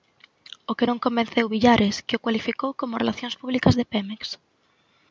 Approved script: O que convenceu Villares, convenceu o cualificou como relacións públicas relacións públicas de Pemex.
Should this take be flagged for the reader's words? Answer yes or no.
yes